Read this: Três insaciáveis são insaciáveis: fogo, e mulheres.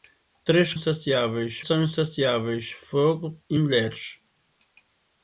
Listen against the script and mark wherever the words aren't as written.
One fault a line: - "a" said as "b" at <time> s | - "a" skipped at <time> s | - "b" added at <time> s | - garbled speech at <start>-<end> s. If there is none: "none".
none